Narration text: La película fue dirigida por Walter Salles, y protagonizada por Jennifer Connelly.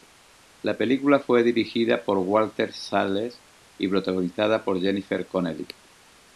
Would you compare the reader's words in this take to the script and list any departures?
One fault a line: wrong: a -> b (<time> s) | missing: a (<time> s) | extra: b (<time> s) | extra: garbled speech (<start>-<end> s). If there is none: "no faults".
no faults